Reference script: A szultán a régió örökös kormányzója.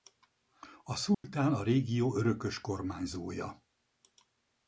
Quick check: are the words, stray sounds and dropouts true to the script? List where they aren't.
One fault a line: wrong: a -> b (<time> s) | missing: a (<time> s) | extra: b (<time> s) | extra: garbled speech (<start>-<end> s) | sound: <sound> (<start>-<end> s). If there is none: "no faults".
sound: dropout (1.1-1.2 s)